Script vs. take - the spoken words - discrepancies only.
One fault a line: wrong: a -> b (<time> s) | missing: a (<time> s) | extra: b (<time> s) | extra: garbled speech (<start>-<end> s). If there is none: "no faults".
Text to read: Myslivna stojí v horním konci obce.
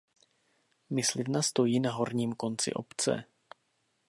wrong: v -> na (1.8 s)